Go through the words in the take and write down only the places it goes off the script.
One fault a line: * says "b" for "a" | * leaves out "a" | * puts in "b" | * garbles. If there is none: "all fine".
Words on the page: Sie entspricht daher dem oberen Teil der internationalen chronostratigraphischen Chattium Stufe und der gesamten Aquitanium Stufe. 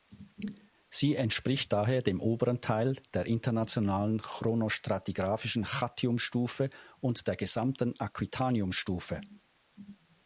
all fine